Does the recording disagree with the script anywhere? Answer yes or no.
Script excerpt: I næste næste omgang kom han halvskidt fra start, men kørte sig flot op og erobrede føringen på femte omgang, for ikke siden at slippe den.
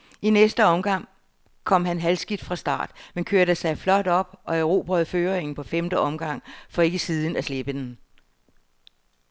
yes